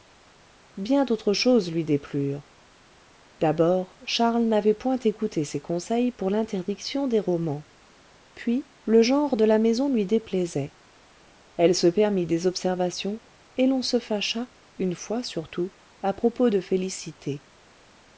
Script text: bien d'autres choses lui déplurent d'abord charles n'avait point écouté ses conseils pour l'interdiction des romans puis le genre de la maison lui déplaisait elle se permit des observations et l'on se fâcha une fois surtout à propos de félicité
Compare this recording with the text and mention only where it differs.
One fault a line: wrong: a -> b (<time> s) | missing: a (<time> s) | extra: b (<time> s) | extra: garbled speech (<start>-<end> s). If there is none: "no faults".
no faults